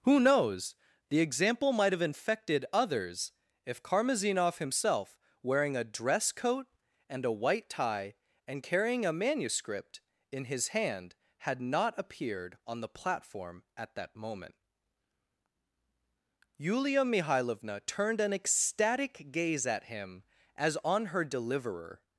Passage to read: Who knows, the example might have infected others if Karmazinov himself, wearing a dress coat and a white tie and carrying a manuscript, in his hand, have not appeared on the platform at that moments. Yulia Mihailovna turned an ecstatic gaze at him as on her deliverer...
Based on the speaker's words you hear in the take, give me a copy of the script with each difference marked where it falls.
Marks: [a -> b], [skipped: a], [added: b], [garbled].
Who knows, the example might have infected others if Karmazinov himself, wearing a dress coat and a white tie and carrying a manuscript, in his hand, [have -> had] not appeared on the platform at that [moments. -> moment] Yulia Mihailovna turned an ecstatic gaze at him as on her deliverer...